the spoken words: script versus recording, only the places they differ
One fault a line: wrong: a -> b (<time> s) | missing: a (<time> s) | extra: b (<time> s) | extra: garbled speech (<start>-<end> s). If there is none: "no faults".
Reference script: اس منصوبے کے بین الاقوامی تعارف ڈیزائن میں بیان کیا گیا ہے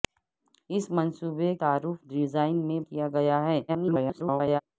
missing: کے بین الاقوامی (1.5 s)
missing: بیان (2.8 s)
extra: garbled speech (3.7-4.6 s)